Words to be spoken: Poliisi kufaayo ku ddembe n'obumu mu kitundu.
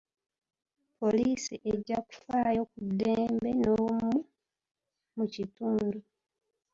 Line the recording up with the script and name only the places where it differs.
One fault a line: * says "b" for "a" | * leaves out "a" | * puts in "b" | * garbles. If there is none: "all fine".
* puts in "ejja"